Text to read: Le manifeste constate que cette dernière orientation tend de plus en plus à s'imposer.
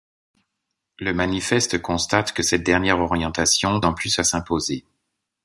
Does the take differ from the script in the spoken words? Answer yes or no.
yes